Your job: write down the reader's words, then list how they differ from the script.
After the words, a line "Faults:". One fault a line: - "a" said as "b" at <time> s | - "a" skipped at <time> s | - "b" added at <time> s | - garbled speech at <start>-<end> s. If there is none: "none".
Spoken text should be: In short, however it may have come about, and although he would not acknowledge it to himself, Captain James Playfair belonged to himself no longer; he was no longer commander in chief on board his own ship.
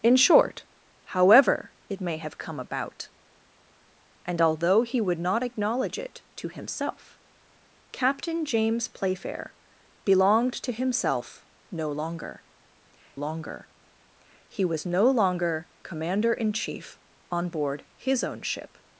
In short, however it may have come about, and although he would not acknowledge it to himself, Captain James Playfair belonged to himself no longer longer; he was no longer commander in chief on board his own ship.
Faults:
- "longer" added at 13.1 s